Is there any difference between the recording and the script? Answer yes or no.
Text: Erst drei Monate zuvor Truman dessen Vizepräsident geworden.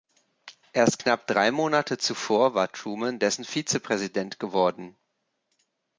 yes